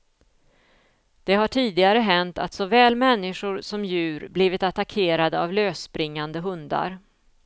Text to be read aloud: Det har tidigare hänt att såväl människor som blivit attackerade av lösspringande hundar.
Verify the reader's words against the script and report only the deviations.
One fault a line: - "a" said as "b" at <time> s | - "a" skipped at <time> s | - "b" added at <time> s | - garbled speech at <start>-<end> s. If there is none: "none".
- "djur" added at 3.8 s